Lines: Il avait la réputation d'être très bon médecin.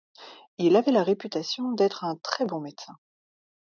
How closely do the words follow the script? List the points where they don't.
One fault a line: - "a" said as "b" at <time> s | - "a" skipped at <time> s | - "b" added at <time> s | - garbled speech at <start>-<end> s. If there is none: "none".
- "un" added at 2.0 s